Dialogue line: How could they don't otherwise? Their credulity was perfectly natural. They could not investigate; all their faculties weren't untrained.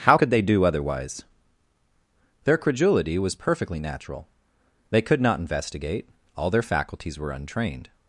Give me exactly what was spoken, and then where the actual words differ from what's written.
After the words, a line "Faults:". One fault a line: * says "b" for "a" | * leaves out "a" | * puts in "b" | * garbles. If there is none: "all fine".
How could they do otherwise? Their credulity was perfectly natural. They could not investigate; all their faculties were untrained.
Faults:
* says "do" for "don't"
* says "were" for "weren't"